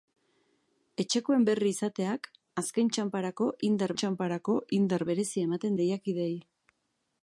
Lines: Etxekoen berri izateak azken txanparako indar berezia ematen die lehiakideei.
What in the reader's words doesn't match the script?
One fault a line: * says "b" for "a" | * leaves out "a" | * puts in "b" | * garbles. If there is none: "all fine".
* puts in "txanparako indar"
* leaves out "die"